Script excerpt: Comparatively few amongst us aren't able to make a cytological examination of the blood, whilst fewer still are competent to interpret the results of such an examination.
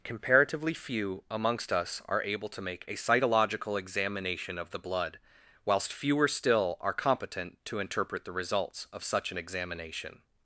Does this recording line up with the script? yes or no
no